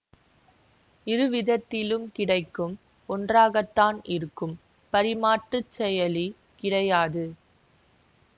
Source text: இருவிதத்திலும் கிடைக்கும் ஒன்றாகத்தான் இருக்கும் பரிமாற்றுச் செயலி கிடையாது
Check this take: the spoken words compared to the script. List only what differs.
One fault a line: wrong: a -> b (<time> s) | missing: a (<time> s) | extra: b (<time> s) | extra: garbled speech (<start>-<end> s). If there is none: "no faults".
no faults